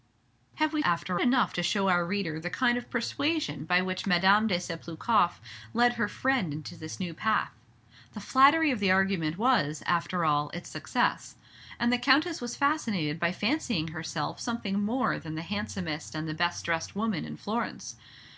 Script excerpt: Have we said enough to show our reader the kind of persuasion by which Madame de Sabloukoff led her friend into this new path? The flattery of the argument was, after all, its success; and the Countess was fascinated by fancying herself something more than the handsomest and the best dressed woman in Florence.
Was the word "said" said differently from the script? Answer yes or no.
yes